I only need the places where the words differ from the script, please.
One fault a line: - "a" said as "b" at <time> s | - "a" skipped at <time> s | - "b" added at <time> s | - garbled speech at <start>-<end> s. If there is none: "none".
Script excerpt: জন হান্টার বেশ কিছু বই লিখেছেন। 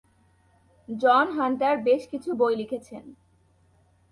none